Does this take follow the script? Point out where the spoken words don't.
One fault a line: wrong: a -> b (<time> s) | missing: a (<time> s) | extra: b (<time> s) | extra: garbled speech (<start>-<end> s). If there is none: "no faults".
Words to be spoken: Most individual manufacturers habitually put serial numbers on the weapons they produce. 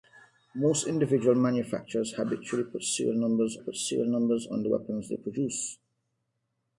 extra: put serial numbers (3.6 s)